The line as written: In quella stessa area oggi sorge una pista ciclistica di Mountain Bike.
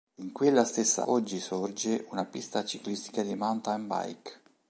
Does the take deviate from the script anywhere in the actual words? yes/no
yes